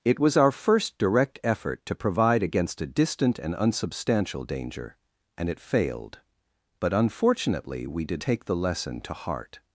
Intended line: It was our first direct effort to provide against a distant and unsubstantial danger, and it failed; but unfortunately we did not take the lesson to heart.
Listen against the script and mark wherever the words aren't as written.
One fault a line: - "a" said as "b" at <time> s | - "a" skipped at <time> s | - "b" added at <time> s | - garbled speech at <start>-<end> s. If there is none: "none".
- "not" skipped at 8.2 s